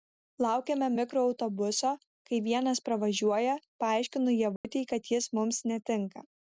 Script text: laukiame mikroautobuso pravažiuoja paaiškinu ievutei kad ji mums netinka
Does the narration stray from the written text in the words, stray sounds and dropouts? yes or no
yes